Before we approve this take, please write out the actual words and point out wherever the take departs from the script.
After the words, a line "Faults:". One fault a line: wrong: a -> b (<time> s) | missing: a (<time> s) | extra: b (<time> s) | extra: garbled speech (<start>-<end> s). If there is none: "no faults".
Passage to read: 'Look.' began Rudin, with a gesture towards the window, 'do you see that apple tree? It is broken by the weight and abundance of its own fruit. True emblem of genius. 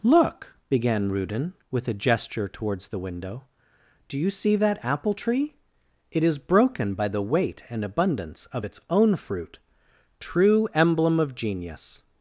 'Look.' began Rudin, with a gesture towards the window, 'do you see that apple tree? It is broken by the weight and abundance of its own fruit. True emblem of genius.
Faults:
no faults